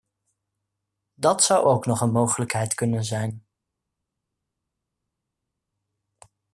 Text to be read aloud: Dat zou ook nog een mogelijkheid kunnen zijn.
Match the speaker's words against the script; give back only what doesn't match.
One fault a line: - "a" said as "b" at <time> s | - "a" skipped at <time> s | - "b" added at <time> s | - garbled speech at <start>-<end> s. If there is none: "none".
none